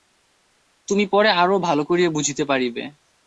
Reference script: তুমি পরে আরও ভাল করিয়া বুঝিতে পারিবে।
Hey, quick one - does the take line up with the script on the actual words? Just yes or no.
yes